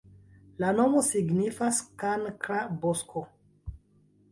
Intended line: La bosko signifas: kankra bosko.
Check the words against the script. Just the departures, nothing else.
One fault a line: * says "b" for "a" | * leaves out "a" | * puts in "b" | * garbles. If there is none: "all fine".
* says "nomo" for "bosko"